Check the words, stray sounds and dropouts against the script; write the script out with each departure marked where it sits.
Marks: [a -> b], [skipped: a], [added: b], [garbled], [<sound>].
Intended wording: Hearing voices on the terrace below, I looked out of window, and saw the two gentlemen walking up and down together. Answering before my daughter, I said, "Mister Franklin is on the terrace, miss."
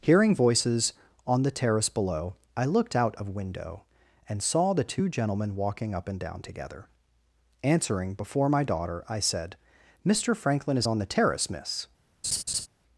Hearing voices on the terrace below, I looked out of window, and saw the two gentlemen walking up and down together. Answering before my daughter, I said, "Mister Franklin is on the terrace, miss." [laugh]